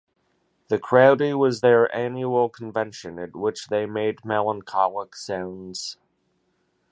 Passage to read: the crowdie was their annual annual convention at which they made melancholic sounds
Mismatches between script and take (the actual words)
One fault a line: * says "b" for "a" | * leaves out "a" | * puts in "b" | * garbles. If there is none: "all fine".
* leaves out "annual"